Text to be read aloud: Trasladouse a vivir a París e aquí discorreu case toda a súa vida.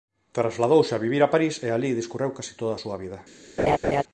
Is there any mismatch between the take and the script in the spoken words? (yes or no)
yes